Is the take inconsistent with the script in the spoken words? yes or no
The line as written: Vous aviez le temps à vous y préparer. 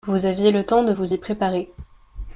yes